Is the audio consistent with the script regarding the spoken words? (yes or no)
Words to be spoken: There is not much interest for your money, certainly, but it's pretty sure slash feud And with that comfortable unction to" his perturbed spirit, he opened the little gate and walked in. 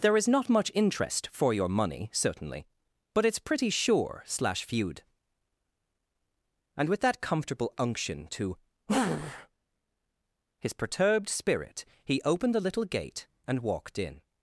yes